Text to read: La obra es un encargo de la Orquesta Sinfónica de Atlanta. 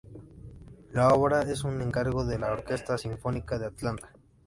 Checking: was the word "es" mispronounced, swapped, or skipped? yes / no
no